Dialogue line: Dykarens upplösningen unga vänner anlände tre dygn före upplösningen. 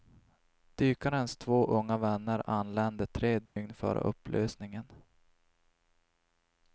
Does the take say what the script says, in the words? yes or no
no